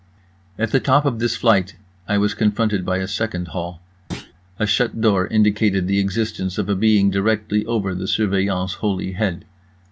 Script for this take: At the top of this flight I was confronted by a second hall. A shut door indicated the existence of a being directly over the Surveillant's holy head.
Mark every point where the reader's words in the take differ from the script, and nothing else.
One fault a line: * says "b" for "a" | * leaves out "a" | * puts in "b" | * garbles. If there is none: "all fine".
all fine